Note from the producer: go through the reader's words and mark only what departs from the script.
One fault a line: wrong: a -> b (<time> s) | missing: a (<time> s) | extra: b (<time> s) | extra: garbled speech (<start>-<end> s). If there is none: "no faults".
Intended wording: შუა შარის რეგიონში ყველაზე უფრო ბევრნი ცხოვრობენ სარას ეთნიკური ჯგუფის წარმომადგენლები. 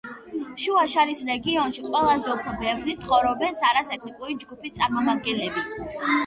no faults